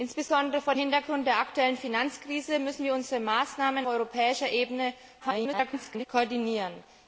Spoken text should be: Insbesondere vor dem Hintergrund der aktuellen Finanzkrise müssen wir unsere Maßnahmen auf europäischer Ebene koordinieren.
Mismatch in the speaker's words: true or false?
true